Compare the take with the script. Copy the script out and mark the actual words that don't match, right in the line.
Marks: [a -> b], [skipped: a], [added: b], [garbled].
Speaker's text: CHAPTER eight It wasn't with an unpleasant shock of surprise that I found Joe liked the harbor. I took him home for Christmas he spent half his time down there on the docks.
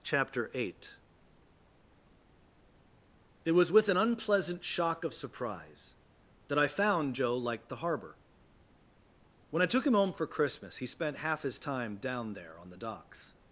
CHAPTER eight It [wasn't -> was] with an unpleasant shock of surprise that I found Joe liked the harbor. [added: When] I took him home for Christmas he spent half his time down there on the docks.